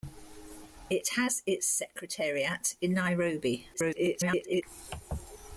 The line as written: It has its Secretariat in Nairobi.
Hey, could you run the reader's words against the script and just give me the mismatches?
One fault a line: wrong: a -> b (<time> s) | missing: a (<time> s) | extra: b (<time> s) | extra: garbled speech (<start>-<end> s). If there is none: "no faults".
extra: garbled speech (3.7-4.6 s)